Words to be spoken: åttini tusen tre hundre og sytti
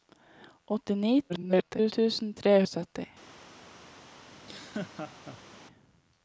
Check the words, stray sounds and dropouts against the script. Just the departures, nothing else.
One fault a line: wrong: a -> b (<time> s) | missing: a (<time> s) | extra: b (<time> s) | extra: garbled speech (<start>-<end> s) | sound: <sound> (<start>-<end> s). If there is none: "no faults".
extra: garbled speech (1.3-1.9 s)
missing: hundre (2.6 s)
sound: laugh (4.3-5.6 s)